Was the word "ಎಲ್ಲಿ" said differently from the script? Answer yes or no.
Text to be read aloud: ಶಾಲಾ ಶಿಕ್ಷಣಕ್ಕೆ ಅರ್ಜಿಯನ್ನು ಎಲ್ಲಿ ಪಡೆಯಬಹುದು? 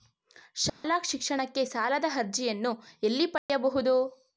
no